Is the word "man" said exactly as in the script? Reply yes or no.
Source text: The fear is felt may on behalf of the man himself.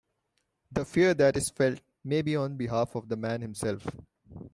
yes